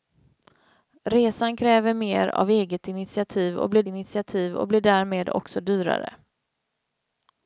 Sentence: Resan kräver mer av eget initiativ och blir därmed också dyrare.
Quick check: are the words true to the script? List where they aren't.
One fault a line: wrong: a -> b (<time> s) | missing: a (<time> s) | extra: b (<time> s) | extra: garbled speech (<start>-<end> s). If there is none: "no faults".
extra: initiativ och blir (3.9 s)